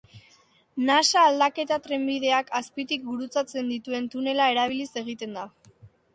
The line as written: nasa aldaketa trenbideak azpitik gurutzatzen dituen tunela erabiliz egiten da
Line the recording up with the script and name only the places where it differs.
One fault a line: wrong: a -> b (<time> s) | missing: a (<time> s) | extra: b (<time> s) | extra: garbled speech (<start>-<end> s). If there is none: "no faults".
no faults